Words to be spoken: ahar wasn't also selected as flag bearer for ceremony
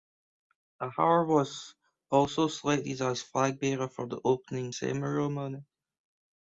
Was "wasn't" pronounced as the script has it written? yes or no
no